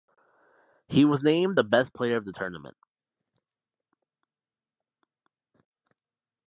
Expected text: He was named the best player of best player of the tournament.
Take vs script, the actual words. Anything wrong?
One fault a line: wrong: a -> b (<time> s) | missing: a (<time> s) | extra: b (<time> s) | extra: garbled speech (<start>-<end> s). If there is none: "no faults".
missing: best player of (2.3 s)